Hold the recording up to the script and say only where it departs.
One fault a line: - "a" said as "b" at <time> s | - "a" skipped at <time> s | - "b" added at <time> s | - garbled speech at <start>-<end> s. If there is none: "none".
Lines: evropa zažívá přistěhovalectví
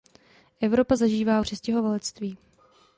none